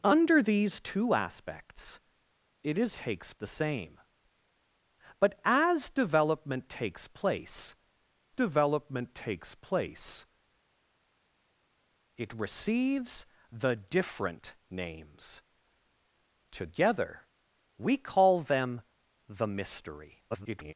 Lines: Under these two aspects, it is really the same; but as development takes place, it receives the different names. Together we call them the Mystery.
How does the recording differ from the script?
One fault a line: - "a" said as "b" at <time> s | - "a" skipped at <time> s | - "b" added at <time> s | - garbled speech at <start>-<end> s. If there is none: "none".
- "really" said as "takes" at 2.9 s
- "development takes place" added at 8.3 s
- garbled speech at 20.3-20.7 s